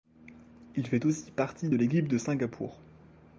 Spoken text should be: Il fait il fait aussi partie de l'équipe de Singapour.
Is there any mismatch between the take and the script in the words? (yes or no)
yes